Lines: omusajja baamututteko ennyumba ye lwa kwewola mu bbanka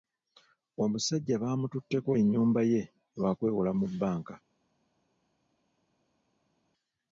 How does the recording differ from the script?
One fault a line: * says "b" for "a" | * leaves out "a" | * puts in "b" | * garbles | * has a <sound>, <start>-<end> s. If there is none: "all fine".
all fine